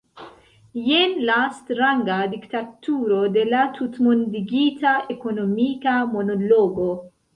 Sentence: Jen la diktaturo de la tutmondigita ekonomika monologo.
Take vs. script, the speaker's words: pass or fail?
fail